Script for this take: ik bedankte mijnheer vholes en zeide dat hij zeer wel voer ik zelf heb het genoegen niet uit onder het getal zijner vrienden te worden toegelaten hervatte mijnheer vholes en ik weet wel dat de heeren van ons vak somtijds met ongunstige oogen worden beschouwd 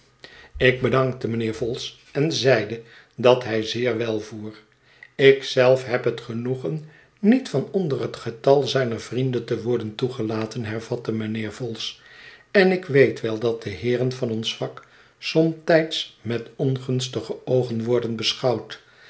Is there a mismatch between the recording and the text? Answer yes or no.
yes